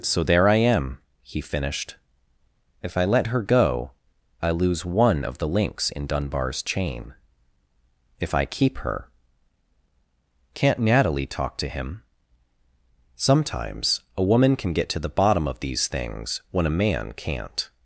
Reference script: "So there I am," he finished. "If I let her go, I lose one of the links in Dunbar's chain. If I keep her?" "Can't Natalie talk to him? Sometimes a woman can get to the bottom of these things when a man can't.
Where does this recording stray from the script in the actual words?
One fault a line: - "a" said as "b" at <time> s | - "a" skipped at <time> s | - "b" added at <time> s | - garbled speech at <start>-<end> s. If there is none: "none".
none